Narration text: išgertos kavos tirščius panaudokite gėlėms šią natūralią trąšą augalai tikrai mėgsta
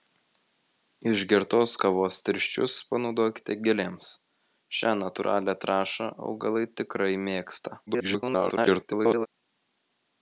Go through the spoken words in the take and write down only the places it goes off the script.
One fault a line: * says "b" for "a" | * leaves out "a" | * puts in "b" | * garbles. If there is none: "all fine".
* garbles